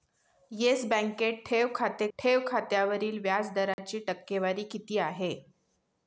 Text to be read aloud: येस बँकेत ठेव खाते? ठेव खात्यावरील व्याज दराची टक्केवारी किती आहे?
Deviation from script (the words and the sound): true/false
true